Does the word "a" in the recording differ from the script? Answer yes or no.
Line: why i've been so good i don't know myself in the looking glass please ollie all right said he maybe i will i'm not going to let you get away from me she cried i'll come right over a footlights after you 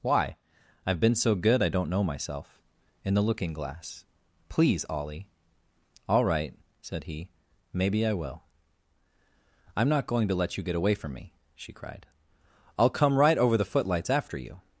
yes